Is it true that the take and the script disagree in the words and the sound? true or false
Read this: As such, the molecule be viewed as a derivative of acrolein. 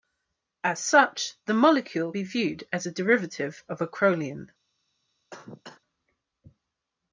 true